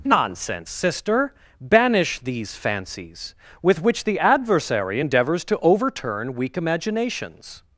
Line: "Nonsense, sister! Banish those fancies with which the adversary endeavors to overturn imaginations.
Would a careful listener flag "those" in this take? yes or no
yes